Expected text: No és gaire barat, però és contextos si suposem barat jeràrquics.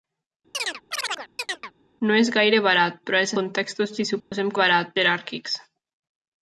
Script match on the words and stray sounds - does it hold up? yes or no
no